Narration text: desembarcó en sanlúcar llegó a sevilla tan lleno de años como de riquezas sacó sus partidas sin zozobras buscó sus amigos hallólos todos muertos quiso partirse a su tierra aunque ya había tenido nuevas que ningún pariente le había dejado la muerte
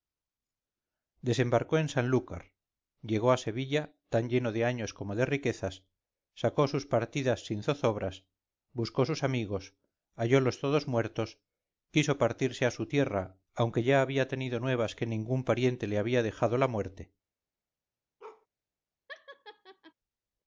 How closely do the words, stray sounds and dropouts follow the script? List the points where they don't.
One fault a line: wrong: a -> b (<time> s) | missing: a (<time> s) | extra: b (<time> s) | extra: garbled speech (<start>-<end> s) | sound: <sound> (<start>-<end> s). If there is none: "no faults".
sound: bark (18.2-18.5 s)
sound: laugh (19.1-19.9 s)